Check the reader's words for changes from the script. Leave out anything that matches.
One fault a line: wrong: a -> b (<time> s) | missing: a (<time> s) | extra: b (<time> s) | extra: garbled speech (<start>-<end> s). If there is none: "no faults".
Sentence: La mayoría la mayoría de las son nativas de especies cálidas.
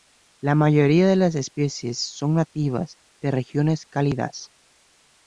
missing: la mayoría (1.1 s)
extra: especies (1.4 s)
wrong: especies -> regiones (3.3 s)